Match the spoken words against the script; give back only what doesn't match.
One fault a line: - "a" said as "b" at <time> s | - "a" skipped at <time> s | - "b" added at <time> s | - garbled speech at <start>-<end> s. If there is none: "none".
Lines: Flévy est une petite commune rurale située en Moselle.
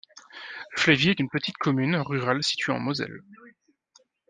none